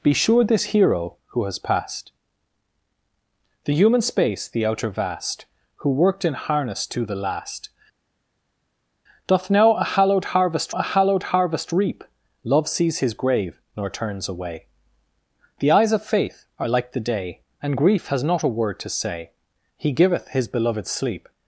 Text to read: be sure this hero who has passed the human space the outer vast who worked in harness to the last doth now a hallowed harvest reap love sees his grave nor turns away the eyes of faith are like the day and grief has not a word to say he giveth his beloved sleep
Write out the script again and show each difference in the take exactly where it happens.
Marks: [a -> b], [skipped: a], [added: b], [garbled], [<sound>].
be sure this hero who has passed the human space the outer vast who worked in harness to the last doth now a hallowed harvest [added: a hallowed harvest] reap love sees his grave nor turns away the eyes of faith are like the day and grief has not a word to say he giveth his beloved sleep